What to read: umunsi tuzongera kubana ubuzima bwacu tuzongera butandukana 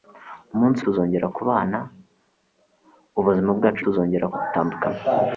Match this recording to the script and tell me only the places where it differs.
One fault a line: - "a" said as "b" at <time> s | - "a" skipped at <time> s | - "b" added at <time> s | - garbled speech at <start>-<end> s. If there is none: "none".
none